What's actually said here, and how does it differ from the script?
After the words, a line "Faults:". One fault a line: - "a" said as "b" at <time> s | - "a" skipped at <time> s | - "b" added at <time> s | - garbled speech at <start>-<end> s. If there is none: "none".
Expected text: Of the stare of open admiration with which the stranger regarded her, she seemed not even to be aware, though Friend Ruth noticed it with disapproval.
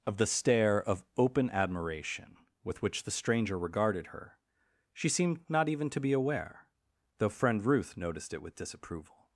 Of the stare of open admiration with which the stranger regarded her, she seemed not even to be aware, though Friend Ruth noticed it with disapproval.
Faults:
none